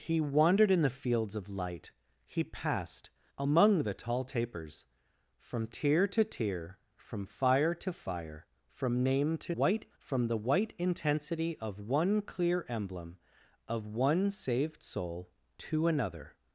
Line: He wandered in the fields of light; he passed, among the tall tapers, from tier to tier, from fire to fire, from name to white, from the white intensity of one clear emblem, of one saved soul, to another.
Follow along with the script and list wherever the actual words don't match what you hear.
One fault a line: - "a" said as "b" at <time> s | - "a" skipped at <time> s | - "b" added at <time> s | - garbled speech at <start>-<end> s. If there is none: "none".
none